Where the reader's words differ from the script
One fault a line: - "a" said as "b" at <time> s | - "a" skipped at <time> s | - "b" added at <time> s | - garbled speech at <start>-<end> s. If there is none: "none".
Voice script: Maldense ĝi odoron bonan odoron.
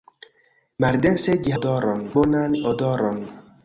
none